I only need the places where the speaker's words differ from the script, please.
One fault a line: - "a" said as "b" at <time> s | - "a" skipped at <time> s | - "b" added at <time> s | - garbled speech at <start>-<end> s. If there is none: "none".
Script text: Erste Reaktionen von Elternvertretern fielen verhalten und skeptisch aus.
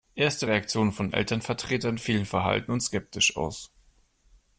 none